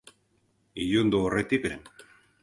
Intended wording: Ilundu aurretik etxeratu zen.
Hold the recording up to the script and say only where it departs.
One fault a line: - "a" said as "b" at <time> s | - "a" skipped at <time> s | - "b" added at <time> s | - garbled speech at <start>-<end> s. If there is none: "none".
- "etxeratu" skipped at 1.7 s